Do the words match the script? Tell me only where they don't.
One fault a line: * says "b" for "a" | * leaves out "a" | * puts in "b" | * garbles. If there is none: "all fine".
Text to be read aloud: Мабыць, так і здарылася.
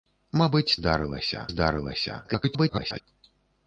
* says "здарылася" for "так"
* garbles